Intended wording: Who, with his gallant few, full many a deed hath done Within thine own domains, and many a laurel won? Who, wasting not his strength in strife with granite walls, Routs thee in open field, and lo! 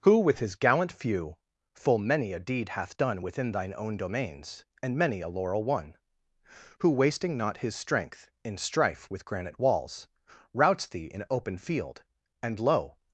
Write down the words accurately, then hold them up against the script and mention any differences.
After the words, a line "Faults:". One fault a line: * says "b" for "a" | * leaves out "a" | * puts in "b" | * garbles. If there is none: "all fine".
Who, with his gallant few, full many a deed hath done Within thine own domains, and many a laurel won? Who, wasting not his strength in strife with granite walls, Routs thee in open field, and lo!
Faults:
all fine